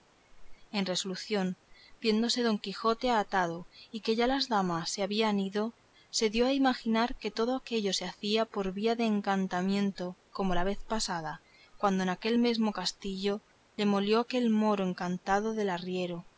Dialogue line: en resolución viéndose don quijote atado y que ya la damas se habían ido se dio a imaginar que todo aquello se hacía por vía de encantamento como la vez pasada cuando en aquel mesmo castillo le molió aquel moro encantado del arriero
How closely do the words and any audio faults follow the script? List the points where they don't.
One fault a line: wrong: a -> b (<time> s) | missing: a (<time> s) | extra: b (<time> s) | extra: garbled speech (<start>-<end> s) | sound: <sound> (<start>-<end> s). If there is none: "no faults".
wrong: la -> las (4.3 s)